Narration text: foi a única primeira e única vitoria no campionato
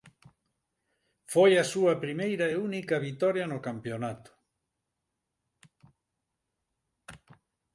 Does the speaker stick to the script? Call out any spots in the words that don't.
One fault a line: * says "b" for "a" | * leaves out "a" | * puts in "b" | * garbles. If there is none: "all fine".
* says "súa" for "única"